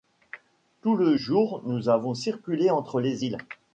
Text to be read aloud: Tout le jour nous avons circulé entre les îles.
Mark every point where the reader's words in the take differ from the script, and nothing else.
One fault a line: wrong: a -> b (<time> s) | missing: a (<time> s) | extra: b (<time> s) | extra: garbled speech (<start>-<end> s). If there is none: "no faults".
no faults